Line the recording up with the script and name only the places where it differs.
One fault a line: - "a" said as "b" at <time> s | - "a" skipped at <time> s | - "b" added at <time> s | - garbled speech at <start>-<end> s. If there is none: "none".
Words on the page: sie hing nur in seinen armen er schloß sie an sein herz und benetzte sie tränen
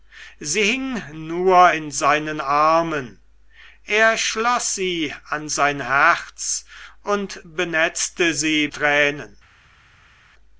none